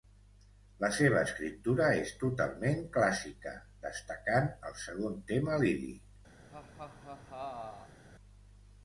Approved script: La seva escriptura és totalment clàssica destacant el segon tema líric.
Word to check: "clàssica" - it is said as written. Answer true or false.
true